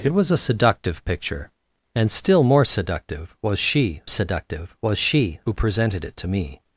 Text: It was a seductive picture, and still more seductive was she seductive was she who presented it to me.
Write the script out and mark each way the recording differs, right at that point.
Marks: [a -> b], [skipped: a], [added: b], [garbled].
It was a seductive picture, and still more seductive was she seductive was she who presented it to me.